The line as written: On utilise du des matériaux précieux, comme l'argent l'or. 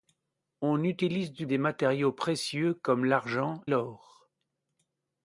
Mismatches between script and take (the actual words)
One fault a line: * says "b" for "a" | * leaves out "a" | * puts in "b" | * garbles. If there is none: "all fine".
all fine